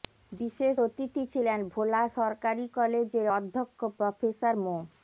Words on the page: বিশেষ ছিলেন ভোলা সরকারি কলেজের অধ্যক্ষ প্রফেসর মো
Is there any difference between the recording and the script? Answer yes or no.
yes